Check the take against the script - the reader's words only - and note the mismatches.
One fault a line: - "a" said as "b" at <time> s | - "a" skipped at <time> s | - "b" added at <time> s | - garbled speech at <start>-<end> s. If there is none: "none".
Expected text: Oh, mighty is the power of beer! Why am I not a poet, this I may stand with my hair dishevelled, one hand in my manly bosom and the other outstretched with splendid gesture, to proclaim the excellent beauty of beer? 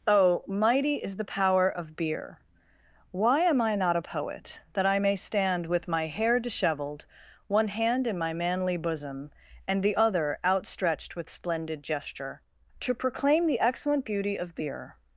- "this" said as "that" at 4.7 s